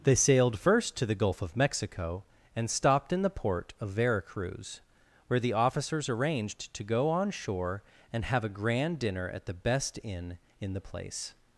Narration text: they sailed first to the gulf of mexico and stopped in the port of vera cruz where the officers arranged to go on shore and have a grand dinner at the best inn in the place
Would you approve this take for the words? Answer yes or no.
yes